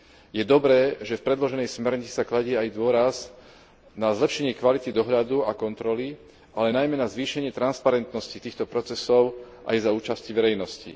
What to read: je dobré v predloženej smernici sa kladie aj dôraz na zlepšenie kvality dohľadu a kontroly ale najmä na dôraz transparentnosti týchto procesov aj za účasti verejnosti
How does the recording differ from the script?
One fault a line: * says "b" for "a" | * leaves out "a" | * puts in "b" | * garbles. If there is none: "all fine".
* puts in "že"
* says "zvýšenie" for "dôraz"